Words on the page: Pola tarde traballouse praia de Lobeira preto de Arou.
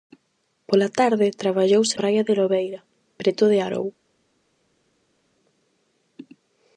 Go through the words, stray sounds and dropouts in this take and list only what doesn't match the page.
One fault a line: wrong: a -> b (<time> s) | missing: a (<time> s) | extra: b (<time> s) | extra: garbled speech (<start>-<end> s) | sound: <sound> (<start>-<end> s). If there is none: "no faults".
no faults